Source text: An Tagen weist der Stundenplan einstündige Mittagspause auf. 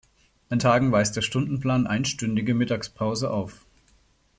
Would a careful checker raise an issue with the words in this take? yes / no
no